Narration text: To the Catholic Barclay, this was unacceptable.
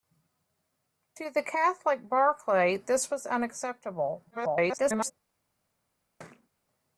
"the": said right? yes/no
yes